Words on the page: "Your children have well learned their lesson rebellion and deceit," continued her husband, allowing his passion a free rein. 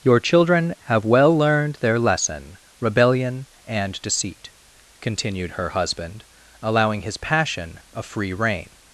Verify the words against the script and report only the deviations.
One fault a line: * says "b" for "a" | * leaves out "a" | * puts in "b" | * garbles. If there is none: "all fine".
all fine